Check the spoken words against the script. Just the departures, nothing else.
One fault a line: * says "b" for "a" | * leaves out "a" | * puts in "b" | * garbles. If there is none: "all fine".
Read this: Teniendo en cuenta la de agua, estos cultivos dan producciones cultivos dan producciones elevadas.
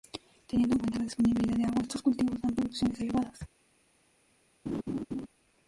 * puts in "disponibilidad"
* leaves out "cultivos dan producciones"